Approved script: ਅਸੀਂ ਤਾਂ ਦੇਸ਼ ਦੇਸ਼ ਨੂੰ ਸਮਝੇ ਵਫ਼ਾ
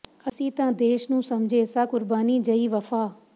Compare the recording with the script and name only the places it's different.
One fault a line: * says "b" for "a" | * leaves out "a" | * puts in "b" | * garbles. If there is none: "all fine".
* leaves out "ਦੇਸ਼"
* puts in "ਸਾਂ ਕੁਰਬਾਨੀ ਜਹੀ"